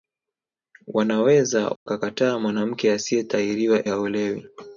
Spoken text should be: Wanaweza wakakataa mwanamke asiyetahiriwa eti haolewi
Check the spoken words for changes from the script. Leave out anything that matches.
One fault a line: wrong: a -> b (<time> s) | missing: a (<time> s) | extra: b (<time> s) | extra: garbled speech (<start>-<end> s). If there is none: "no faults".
missing: eti (3.9 s)